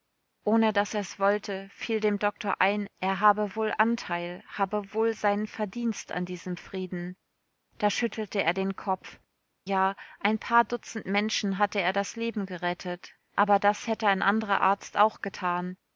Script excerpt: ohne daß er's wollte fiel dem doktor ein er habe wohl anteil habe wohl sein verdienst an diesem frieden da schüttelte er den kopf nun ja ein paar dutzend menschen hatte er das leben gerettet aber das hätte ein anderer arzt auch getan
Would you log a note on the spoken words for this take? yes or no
yes